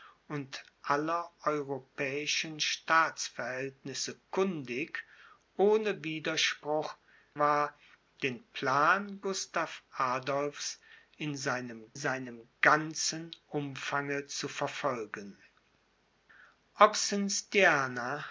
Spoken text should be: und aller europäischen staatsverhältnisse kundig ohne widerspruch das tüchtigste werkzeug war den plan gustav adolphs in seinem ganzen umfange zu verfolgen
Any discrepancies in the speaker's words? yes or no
yes